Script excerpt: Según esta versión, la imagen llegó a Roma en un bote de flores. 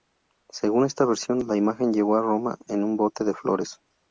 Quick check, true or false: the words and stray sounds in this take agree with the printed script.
true